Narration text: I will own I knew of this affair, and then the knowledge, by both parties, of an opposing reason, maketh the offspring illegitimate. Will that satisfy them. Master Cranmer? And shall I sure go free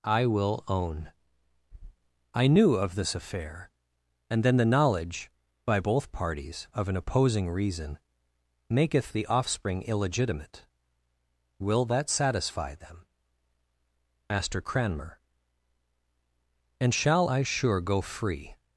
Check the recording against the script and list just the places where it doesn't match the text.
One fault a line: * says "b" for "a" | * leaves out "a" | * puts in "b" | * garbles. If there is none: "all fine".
all fine